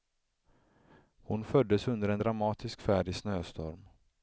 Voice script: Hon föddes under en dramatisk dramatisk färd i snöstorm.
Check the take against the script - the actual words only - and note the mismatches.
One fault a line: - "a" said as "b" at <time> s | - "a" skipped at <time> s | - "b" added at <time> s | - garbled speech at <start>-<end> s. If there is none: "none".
- "dramatisk" skipped at 2.8 s